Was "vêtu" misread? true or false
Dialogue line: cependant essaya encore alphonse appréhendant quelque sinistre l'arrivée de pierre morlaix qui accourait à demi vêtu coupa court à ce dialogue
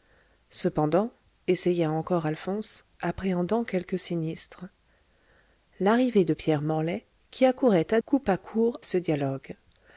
true